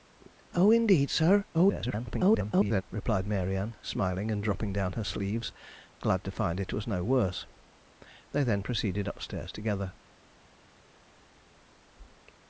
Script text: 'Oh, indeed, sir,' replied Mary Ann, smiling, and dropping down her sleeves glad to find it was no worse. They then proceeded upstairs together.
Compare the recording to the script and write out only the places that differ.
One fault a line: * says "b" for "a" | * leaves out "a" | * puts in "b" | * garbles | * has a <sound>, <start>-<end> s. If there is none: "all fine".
* garbles